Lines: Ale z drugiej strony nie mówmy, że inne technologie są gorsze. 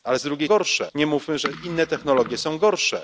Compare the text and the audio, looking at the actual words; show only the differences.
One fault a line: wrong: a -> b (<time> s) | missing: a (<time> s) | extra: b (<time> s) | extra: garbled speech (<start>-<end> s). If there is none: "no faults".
wrong: strony -> gorsze (0.5 s)